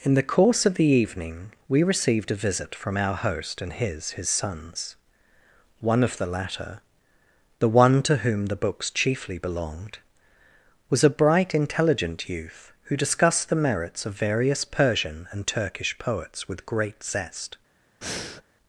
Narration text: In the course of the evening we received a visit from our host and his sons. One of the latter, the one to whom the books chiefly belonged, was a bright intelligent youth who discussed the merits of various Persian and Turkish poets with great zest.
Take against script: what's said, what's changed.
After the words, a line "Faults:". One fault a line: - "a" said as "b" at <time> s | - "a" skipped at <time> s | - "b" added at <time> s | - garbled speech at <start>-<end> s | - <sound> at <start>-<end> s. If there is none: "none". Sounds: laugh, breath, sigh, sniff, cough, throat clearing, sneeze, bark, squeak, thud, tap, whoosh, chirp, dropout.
In the course of the evening we received a visit from our host and his his sons. One of the latter, the one to whom the books chiefly belonged, was a bright intelligent youth who discussed the merits of various Persian and Turkish poets with great zest.
Faults:
- "his" added at 4.1 s
- breath at 18.0-18.4 s